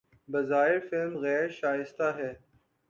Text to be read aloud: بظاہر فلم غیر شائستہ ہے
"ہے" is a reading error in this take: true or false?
false